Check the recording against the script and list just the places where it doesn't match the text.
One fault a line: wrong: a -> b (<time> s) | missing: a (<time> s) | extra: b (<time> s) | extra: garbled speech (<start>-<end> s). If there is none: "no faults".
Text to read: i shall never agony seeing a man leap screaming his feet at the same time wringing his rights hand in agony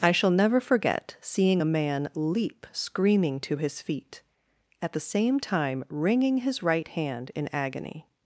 wrong: agony -> forget (0.6 s)
extra: to (3.4 s)
wrong: rights -> right (6.6 s)